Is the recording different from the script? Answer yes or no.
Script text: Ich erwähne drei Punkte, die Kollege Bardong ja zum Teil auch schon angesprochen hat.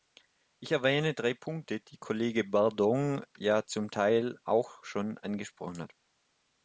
no